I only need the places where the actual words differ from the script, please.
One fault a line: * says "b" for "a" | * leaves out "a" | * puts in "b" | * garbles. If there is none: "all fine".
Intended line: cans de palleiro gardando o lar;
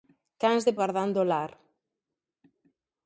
* leaves out "palleiro"